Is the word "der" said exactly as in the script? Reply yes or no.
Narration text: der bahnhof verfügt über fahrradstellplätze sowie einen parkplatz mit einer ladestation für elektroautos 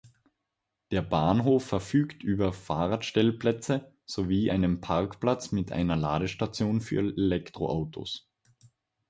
yes